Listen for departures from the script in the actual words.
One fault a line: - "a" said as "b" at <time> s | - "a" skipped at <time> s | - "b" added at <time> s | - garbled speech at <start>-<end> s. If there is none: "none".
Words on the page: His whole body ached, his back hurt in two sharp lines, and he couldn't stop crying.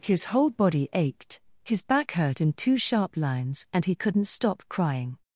none